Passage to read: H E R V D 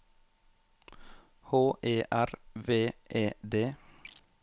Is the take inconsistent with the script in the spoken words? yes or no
yes